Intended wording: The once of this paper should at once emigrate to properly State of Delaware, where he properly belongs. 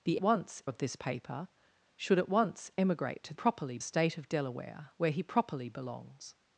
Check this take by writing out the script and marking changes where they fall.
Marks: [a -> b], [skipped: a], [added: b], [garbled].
The once of this paper should at once emigrate to properly State of Delaware, where he properly belongs.